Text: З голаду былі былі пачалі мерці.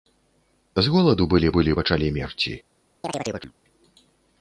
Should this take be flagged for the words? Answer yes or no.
no